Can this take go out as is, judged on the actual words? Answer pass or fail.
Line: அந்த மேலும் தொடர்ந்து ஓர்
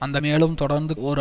pass